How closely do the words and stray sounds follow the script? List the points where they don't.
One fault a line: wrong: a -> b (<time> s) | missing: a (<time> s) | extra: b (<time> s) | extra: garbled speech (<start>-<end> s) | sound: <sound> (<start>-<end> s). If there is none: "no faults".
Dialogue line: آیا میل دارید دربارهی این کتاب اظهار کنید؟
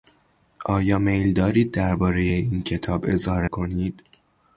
no faults